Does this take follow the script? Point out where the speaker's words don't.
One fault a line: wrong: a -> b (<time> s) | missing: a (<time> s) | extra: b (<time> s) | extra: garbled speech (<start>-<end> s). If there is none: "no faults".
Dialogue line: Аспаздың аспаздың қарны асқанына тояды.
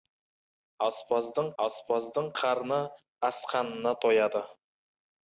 no faults